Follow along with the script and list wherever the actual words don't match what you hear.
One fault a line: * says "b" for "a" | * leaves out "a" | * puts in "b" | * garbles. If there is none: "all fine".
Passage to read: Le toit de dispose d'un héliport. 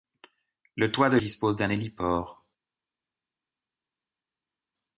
all fine